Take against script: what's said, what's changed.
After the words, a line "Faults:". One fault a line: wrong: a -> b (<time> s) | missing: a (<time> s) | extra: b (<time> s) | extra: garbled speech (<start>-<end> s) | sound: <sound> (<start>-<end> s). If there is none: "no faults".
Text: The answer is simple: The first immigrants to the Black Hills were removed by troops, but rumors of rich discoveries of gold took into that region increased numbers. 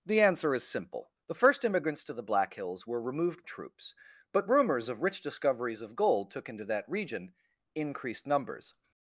The answer is simple: The first immigrants to the Black Hills were removed troops, but rumors of rich discoveries of gold took into that region increased numbers.
Faults:
missing: by (3.4 s)